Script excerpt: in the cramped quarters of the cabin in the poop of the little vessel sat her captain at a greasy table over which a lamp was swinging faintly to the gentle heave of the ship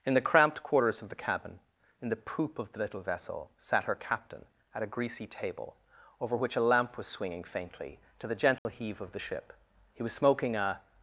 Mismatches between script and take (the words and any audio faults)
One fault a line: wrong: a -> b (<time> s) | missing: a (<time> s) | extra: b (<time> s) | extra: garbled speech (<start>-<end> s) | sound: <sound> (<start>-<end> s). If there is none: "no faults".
sound: dropout (8.6-8.7 s)
extra: he was smoking a (9.9 s)